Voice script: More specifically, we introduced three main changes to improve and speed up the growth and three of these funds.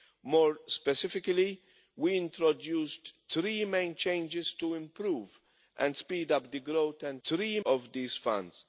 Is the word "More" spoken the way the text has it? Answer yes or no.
yes